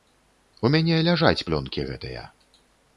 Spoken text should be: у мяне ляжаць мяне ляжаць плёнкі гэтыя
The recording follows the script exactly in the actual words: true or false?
false